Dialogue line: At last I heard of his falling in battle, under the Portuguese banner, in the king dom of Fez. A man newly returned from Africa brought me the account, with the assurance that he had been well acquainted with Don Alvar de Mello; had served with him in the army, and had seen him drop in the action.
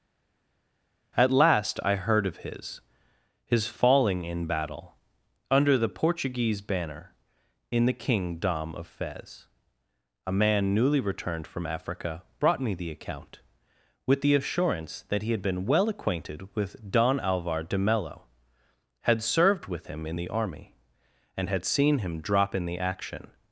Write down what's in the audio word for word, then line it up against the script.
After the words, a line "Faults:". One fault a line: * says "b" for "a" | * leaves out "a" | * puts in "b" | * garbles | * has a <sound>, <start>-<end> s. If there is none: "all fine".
At last I heard of his his falling in battle, under the Portuguese banner, in the king dom of Fez. A man newly returned from Africa brought me the account, with the assurance that he had been well acquainted with Don Alvar de Mello; had served with him in the army, and had seen him drop in the action.
Faults:
* puts in "his"